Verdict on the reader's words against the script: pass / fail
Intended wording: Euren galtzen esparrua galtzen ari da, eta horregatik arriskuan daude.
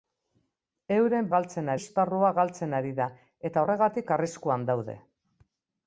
pass